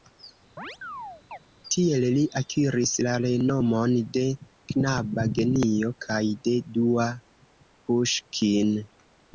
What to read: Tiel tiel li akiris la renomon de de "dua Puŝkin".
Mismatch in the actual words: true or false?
true